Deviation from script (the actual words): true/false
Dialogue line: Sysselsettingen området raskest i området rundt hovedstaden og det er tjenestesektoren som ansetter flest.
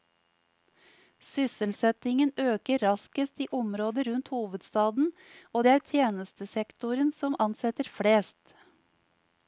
true